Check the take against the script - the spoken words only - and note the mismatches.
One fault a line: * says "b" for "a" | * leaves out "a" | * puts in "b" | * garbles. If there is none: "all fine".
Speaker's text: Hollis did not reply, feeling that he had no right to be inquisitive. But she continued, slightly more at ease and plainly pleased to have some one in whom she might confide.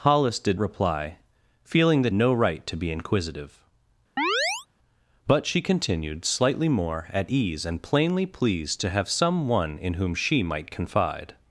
* leaves out "not"
* leaves out "he had"